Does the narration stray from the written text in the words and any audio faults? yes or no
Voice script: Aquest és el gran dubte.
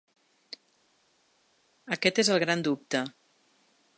no